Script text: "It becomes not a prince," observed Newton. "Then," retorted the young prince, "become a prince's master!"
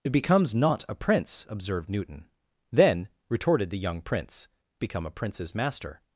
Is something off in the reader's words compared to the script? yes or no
no